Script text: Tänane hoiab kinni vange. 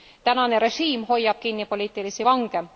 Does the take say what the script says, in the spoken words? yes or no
no